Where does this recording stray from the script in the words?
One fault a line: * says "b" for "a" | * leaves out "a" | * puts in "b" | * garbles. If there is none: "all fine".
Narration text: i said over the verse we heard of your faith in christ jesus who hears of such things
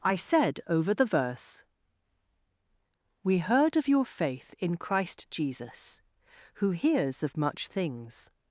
* says "much" for "such"